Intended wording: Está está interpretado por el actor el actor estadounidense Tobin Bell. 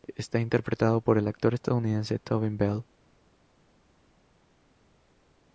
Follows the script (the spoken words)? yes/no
no